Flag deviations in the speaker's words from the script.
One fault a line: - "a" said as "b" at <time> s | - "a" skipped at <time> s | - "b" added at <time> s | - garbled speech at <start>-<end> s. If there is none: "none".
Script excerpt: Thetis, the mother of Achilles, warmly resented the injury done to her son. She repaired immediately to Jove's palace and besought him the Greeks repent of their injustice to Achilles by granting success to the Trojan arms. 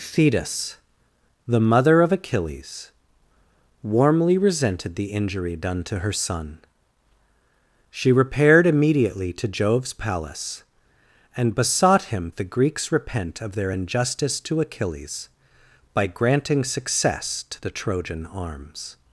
none